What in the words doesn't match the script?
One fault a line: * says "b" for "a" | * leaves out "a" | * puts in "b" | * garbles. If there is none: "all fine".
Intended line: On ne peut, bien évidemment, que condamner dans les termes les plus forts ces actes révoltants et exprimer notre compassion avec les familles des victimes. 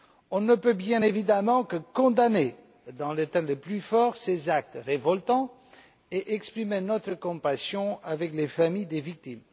all fine